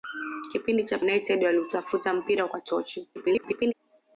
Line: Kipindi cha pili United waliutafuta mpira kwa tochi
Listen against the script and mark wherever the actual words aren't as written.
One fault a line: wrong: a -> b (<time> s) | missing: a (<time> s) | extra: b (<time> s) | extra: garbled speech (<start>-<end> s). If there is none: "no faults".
missing: pili (1.0 s)
extra: garbled speech (3.1-3.7 s)